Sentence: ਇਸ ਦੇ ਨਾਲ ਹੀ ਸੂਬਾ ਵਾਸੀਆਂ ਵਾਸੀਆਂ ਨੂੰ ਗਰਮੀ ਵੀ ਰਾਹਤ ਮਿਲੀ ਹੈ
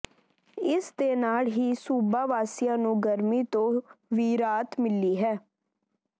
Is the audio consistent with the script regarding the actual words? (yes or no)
no